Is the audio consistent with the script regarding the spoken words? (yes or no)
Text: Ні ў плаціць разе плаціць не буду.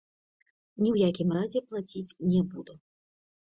no